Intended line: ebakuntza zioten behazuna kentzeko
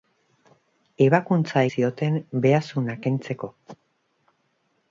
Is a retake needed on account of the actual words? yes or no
no